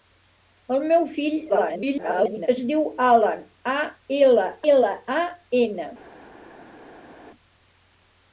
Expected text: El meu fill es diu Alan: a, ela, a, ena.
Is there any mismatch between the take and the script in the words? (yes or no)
yes